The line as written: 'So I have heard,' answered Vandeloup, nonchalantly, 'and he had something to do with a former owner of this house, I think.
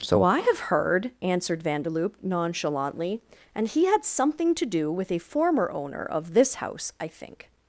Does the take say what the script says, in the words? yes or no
yes